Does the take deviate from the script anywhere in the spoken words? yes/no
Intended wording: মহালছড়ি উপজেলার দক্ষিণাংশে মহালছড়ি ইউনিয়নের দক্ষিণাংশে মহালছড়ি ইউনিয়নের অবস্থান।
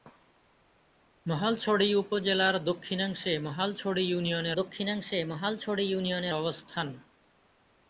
no